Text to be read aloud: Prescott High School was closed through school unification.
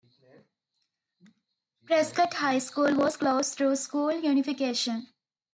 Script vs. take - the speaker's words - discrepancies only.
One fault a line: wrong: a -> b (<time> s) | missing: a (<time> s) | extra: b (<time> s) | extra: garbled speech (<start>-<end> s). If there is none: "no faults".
no faults